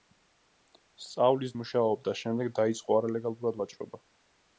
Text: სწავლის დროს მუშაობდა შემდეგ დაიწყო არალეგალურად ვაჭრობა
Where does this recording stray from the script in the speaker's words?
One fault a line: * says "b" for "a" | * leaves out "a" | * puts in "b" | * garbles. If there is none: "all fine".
* leaves out "დროს"